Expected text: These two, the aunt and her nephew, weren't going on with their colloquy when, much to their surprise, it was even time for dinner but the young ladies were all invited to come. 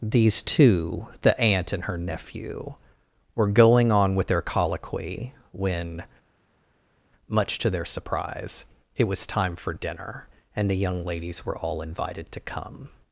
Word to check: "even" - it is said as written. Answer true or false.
false